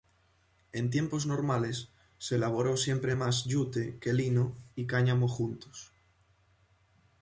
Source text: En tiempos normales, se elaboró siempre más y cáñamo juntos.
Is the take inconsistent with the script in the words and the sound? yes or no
yes